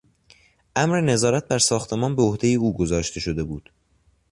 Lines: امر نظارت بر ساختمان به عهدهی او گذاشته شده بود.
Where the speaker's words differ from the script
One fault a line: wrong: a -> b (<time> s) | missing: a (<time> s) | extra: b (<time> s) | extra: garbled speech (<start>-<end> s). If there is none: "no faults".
no faults